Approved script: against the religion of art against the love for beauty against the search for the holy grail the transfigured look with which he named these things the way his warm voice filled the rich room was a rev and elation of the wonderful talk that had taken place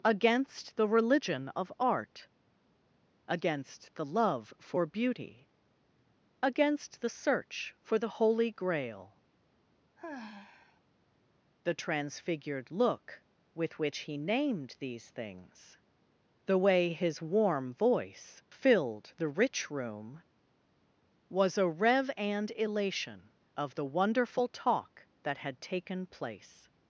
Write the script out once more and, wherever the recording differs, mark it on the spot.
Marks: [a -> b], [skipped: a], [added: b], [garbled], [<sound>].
against the religion of art against the love for beauty against the search for the holy grail [sigh] the transfigured look with which he named these things the way his warm voice filled the rich room was a rev and elation of the wonderful talk that had taken place